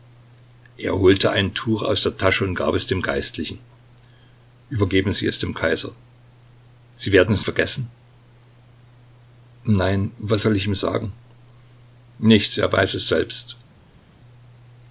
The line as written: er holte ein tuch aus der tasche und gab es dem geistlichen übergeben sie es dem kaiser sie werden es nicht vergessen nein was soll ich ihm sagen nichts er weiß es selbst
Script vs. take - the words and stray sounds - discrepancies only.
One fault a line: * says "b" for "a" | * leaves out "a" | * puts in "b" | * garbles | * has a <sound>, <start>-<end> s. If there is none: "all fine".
* leaves out "nicht"